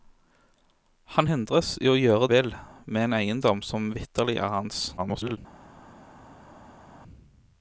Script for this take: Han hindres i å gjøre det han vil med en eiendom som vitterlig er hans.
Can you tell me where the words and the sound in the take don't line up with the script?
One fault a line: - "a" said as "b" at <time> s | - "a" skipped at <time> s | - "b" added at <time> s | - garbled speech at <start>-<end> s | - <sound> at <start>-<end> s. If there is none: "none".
- "det han" skipped at 2.3 s
- garbled speech at 5.0-5.4 s